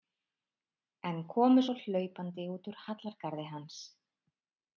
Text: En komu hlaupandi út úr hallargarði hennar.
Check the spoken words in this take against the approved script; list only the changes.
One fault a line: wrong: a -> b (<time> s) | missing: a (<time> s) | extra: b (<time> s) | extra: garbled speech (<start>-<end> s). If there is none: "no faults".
extra: svo (1.6 s)
wrong: hennar -> hans (3.5 s)